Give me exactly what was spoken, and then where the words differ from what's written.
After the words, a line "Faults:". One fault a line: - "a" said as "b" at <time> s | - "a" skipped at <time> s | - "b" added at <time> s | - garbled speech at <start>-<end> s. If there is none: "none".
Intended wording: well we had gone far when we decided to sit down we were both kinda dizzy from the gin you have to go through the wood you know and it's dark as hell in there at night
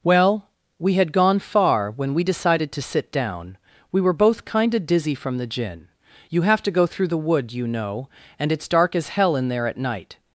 well we had gone far when we decided to sit down we were both kinda dizzy from the gin you have to go through the wood you know and it's dark as hell in there at night
Faults:
none